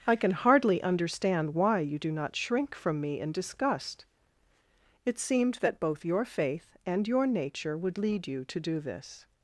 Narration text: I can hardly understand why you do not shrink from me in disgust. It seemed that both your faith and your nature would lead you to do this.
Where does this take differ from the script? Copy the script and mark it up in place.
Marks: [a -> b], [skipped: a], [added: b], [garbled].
I can hardly understand why you do not shrink from me in disgust. It seemed that both your faith and your nature would lead you to do this.